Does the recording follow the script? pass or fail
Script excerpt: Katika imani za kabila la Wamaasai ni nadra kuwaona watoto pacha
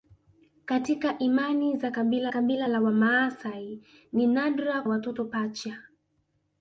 fail